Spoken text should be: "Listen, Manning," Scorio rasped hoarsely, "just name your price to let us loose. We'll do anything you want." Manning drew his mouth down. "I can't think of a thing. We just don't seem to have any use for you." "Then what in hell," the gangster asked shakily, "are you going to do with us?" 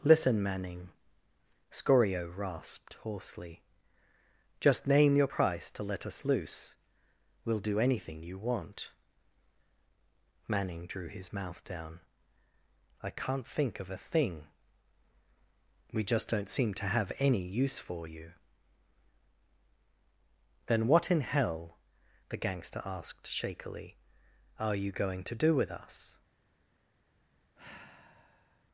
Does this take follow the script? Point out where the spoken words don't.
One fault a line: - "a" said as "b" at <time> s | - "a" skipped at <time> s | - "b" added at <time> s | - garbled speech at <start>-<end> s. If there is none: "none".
none